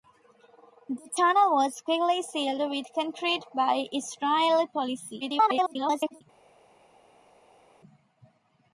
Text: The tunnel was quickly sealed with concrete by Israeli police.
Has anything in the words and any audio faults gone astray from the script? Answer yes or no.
yes